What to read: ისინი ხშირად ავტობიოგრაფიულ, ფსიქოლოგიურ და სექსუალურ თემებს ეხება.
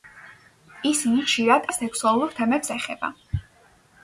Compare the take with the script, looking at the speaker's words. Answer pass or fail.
fail